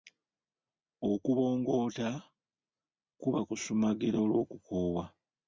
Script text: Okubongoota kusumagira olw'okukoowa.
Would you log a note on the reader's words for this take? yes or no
yes